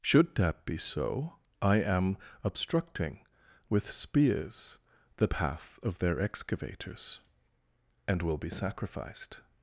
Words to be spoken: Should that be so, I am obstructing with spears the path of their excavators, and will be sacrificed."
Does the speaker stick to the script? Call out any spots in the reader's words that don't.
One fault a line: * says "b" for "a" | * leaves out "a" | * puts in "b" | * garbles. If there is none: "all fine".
all fine